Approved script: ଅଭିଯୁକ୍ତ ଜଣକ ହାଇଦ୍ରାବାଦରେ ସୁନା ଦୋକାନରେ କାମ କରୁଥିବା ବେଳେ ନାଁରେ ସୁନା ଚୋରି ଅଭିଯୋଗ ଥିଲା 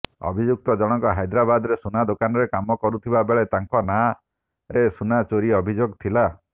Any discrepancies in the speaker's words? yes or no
yes